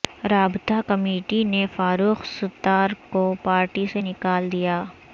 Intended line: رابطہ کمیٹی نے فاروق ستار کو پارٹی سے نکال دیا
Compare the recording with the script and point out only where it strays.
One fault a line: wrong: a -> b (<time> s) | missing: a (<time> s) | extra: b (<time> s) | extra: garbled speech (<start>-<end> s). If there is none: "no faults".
no faults